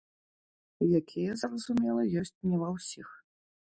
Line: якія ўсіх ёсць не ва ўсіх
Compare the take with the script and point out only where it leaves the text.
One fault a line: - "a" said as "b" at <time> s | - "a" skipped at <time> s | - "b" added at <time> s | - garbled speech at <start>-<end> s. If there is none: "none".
- "ўсіх" said as "зразумела" at 1.4 s